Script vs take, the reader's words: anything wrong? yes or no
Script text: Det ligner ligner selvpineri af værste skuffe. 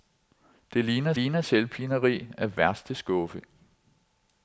no